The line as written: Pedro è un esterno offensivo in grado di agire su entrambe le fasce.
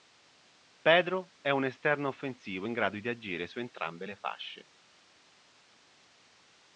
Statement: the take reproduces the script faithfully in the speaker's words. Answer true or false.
true